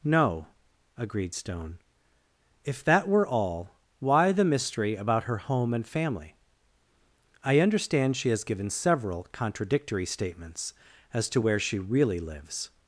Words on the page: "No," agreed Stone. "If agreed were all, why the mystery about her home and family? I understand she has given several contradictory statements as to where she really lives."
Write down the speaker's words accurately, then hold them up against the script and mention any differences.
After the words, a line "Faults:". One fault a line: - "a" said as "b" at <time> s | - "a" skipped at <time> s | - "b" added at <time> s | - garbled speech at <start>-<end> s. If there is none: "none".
"No," agreed Stone. "If that were all, why the mystery about her home and family? I understand she has given several contradictory statements as to where she really lives."
Faults:
- "agreed" said as "that" at 2.9 s